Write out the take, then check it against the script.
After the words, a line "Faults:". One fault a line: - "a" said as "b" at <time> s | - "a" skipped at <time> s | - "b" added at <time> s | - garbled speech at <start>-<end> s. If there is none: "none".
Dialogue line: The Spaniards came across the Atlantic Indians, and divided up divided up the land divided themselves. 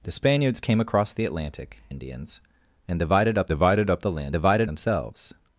The Spaniards came across the Atlantic Indians, and divided up divided up the land divided themselves.
Faults:
none